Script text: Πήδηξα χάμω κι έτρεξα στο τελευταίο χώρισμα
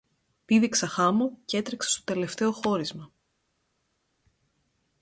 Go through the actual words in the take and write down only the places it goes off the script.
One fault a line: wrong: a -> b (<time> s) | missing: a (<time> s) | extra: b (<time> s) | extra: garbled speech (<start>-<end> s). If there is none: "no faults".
no faults